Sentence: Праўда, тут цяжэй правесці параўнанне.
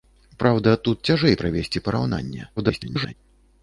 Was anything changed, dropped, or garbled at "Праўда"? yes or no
no